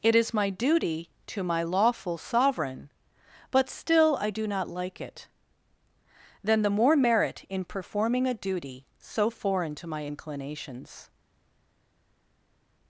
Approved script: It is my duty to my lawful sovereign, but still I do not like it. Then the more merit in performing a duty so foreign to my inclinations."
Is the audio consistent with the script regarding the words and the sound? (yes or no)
yes